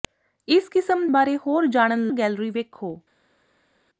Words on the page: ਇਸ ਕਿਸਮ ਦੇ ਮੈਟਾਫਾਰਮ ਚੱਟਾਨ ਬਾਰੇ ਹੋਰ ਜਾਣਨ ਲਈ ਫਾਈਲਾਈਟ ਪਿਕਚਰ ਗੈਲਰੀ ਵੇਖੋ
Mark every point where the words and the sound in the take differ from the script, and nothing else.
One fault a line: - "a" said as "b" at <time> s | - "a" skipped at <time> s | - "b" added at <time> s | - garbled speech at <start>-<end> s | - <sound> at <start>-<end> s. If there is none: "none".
- "ਦੇ ਮੈਟਾਫਾਰਮ ਚੱਟਾਨ" skipped at 1.1 s
- "ਲਈ ਫਾਈਲਾਈਟ ਪਿਕਚਰ" skipped at 2.1 s